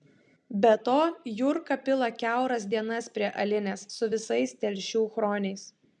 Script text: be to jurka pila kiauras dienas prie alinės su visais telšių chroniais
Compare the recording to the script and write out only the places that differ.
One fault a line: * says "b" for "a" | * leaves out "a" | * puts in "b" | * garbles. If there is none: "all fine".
all fine